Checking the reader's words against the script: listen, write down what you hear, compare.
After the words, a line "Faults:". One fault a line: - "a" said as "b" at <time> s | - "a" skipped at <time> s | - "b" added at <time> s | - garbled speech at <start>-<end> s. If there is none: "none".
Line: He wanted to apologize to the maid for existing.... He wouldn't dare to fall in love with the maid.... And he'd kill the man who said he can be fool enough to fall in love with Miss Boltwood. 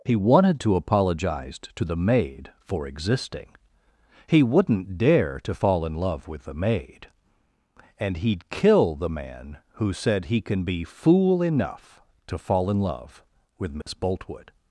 He wanted to apologize to the maid for existing.... He wouldn't dare to fall in love with the maid.... And he'd kill the man who said he can be fool enough to fall in love with Miss Boltwood.
Faults:
none